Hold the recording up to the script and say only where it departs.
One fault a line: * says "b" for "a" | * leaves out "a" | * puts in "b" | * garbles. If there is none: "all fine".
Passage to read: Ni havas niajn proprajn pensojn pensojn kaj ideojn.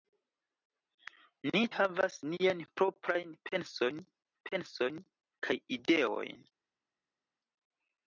all fine